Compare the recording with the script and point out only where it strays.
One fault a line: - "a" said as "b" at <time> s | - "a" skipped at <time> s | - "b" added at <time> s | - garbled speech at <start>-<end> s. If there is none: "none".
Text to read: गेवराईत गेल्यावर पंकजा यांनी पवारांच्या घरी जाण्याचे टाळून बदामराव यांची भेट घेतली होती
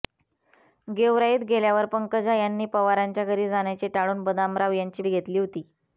- "भेट" skipped at 5.0 s